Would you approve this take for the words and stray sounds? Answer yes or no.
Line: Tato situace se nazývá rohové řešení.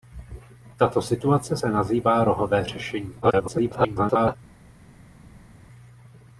no